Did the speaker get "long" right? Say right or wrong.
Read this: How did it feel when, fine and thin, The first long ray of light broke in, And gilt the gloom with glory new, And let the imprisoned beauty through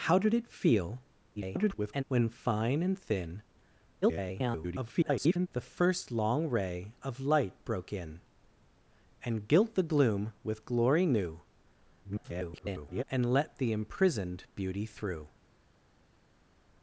right